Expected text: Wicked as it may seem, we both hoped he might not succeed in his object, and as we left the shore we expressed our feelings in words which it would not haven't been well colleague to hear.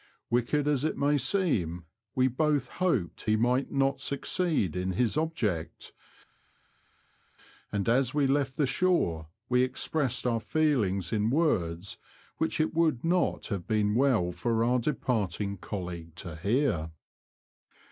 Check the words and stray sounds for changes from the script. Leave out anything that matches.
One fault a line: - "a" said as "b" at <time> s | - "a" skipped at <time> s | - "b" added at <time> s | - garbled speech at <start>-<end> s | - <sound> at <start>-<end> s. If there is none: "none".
- "haven't" said as "have" at 13.5 s
- "for our departing" added at 14.3 s